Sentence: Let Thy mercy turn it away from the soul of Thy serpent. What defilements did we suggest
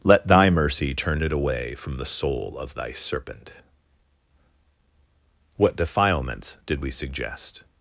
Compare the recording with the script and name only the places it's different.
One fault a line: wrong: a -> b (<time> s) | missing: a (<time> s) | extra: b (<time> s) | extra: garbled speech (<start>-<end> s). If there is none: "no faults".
no faults